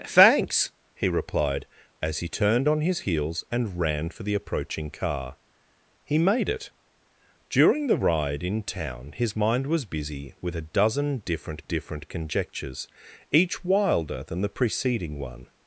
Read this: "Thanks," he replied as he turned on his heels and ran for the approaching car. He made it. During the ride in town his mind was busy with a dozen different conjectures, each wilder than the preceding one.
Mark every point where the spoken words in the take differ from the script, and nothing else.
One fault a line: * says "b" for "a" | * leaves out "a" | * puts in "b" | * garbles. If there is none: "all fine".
* puts in "different"